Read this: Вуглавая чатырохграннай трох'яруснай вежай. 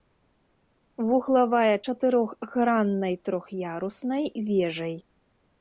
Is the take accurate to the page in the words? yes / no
yes